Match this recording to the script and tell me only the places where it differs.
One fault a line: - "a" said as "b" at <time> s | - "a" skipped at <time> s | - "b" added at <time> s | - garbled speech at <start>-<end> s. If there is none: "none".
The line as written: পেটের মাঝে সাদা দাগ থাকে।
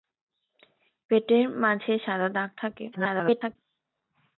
- garbled speech at 2.9-3.6 s